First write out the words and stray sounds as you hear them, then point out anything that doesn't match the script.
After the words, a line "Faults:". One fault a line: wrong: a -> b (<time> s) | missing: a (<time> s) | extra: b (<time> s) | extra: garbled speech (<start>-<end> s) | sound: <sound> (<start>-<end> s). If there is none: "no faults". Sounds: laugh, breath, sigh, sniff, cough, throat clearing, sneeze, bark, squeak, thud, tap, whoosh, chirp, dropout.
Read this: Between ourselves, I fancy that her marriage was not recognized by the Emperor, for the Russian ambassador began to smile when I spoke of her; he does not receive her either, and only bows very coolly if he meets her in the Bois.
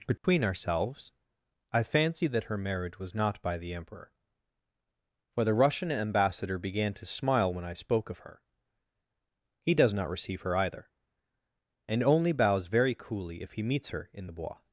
Between ourselves, I fancy that her marriage was not by the Emperor, for the Russian ambassador began to smile when I spoke of her; he does not receive her either, and only bows very coolly if he meets her in the Bois.
Faults:
sound: dropout (0.2-0.2 s)
missing: recognized (3.4 s)